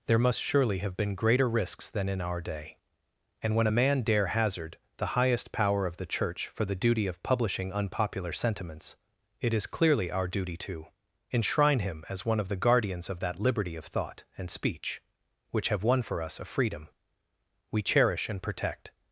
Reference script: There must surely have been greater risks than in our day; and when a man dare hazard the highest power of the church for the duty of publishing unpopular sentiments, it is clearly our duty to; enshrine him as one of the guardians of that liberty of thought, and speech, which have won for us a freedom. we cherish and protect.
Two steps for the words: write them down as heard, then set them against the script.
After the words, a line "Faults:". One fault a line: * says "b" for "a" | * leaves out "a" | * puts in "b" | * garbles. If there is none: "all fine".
There must surely have been greater risks than in our day; and when a man dare hazard the highest power of the church for the duty of publishing unpopular sentiments, it is clearly our duty to; enshrine him as one of the guardians of that liberty of thought, and speech, which have won for us a freedom. we cherish and protect.
Faults:
all fine